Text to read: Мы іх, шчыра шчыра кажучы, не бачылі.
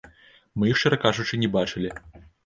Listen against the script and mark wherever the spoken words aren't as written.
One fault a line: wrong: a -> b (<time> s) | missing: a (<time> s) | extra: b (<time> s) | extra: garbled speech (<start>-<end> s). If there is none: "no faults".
missing: шчыра (1.0 s)